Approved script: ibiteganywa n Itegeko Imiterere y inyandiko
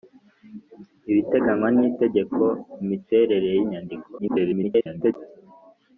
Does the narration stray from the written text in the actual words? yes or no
yes